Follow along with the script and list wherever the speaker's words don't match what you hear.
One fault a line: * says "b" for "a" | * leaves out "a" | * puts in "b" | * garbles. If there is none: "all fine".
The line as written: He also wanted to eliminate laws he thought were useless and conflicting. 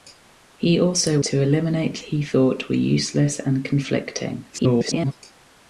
* leaves out "wanted"
* leaves out "laws"
* garbles